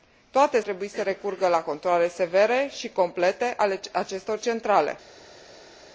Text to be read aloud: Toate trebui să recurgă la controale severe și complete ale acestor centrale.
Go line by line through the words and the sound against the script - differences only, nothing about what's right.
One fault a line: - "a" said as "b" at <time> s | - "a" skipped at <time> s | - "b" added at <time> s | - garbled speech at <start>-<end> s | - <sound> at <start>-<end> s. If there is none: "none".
none